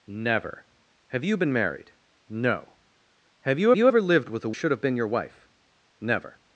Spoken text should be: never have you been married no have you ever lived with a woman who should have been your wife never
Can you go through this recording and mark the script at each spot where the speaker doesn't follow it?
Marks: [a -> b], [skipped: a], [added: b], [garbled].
never have you been married no have you [added: you] ever lived with a [skipped: woman who] should have been your wife never